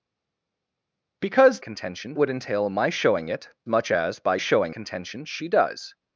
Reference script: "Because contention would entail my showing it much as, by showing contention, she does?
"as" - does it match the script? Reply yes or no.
yes